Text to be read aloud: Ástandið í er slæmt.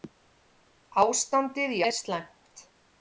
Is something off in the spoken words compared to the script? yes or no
no